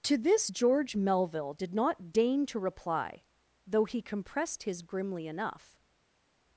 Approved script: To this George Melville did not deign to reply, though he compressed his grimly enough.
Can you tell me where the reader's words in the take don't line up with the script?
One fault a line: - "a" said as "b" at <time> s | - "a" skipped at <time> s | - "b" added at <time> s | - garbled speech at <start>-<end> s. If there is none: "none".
none